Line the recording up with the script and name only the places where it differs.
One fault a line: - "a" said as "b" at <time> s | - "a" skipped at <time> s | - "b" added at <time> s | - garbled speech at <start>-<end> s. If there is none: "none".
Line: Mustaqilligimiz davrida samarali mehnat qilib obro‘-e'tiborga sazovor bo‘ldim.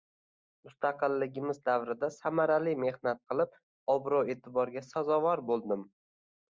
none